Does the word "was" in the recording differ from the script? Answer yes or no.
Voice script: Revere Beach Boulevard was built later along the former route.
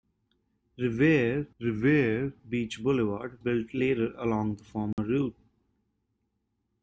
yes